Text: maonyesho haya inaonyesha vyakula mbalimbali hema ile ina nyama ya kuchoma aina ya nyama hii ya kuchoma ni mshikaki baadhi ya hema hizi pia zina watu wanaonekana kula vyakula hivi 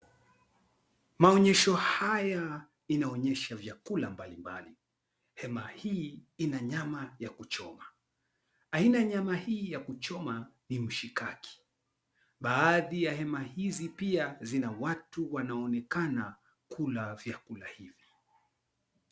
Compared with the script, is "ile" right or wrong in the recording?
wrong